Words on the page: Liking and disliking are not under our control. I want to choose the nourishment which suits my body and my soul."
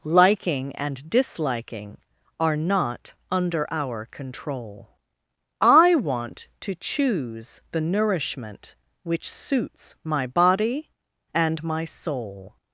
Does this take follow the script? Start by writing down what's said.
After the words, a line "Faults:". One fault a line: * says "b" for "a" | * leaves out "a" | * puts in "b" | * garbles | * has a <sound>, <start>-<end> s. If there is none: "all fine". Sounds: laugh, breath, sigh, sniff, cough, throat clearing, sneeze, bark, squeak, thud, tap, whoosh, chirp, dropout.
Liking and disliking are not under our control. I want to choose the nourishment which suits my body and my soul."
Faults:
all fine